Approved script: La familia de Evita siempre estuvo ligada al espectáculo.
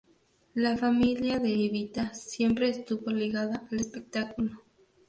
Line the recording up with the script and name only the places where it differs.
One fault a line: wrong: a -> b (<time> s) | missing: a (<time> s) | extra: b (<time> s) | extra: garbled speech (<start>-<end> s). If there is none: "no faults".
no faults